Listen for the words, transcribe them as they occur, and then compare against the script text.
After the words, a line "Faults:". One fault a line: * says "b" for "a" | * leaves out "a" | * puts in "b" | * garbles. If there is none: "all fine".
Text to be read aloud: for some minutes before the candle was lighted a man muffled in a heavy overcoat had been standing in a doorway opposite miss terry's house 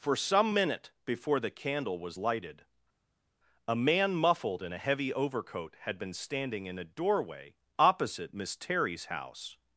for some minute before the candle was lighted a man muffled in a heavy overcoat had been standing in a doorway opposite miss terry's house
Faults:
* says "minute" for "minutes"